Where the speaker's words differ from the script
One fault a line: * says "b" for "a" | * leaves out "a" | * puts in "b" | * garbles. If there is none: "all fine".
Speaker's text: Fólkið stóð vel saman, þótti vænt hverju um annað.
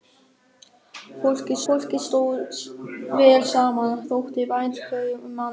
* puts in "fólkið"